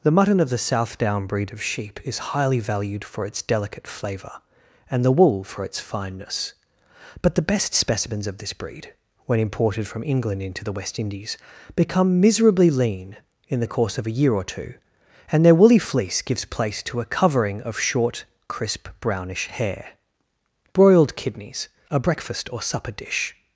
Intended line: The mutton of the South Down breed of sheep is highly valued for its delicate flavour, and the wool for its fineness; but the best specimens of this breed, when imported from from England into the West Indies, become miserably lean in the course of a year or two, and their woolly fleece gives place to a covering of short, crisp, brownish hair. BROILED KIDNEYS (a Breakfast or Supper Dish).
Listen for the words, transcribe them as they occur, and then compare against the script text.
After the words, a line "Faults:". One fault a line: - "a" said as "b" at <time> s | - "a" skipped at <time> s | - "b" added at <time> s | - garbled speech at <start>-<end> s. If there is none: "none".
The mutton of the South Down breed of sheep is highly valued for its delicate flavour, and the wool for its fineness; but the best specimens of this breed, when imported from England into the West Indies, become miserably lean in the course of a year or two, and their woolly fleece gives place to a covering of short, crisp, brownish hair. BROILED KIDNEYS (a Breakfast or Supper Dish).
Faults:
- "from" skipped at 10.0 s